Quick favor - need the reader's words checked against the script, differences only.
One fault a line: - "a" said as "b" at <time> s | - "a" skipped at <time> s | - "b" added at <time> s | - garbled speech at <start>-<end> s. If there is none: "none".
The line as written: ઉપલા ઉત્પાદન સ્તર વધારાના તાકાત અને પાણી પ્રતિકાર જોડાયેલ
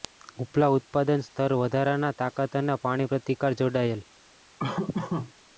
none